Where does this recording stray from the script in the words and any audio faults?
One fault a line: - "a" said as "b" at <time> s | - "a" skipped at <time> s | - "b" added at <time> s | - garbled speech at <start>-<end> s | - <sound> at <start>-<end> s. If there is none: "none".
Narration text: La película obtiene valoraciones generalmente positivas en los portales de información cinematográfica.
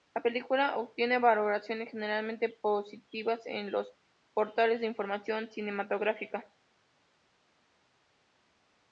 none